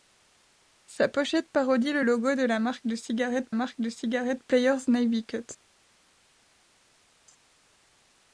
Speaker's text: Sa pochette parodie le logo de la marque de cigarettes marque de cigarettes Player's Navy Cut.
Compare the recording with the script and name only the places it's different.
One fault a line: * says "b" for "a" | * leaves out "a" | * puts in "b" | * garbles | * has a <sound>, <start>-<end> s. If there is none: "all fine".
all fine